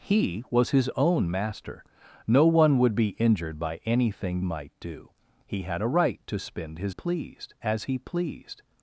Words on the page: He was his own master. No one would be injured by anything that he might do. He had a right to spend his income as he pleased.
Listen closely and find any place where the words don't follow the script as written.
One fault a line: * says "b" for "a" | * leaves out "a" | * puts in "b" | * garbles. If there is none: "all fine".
* leaves out "that he"
* says "pleased" for "income"